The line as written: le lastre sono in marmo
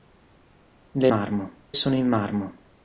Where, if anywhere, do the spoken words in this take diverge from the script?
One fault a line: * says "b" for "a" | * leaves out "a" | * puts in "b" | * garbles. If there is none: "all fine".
* says "marmo" for "lastre"